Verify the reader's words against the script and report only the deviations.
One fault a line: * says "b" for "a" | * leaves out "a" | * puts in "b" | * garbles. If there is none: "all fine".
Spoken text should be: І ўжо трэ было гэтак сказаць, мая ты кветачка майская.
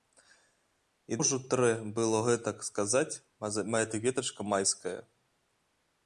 all fine